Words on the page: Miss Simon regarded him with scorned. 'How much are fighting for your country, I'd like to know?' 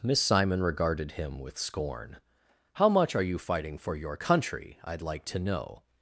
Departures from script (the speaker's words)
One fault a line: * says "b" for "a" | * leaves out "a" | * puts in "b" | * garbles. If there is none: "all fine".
* says "scorn" for "scorned"
* puts in "you"